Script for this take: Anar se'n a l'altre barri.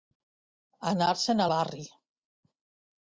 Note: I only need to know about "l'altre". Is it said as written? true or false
false